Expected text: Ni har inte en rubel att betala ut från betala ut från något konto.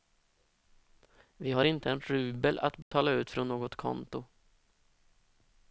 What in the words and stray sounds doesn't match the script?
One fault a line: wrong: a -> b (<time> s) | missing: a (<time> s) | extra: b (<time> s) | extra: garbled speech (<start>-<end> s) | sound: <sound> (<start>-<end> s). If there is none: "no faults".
wrong: Ni -> Vi (1.4 s)
sound: dropout (2.8-2.9 s)
missing: betala ut från (3.5 s)